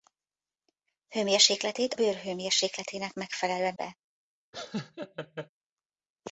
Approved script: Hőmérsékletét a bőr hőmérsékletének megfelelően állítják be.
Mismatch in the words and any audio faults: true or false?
true